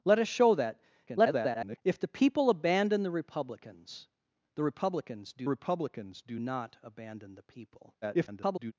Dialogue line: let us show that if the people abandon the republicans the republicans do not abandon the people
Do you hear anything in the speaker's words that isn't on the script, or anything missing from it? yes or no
yes